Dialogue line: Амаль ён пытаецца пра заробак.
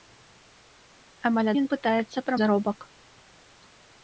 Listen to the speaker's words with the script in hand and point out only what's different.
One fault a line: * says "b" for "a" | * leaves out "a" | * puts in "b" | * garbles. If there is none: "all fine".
all fine